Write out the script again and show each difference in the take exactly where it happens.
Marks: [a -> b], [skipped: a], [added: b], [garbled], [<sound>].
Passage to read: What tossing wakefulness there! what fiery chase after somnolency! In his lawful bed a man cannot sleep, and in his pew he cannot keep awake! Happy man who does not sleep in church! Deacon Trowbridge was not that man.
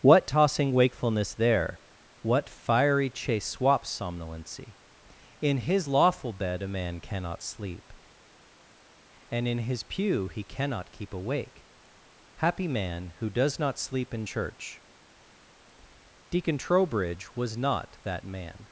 What tossing wakefulness there! what fiery chase [after -> swaps] somnolency! In his lawful bed a man cannot sleep, and in his pew he cannot keep awake! Happy man who does not sleep in church! Deacon Trowbridge was not that man.